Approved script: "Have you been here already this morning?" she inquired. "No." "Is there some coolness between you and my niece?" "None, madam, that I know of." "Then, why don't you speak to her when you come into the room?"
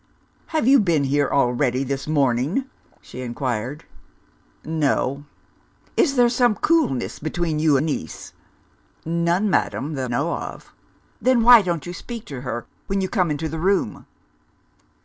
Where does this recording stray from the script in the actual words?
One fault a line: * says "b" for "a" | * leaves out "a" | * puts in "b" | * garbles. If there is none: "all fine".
* leaves out "and my"
* leaves out "I"